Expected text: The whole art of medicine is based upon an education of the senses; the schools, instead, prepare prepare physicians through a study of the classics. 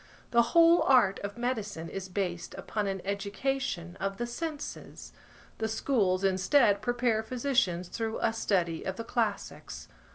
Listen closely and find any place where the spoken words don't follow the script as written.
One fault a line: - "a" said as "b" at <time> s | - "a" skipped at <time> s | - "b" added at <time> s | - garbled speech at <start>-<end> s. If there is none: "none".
- "prepare" skipped at 7.2 s